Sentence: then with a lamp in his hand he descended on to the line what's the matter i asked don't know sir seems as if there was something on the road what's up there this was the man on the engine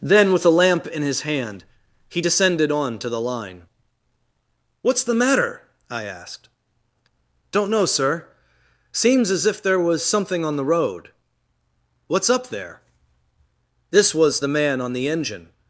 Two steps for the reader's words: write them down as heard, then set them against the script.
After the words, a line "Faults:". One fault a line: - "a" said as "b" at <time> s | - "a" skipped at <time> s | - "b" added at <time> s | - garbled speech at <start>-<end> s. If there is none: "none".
then with a lamp in his hand he descended on to the line what's the matter i asked don't know sir seems as if there was something on the road what's up there this was the man on the engine
Faults:
none